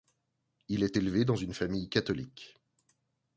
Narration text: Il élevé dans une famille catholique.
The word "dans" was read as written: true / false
true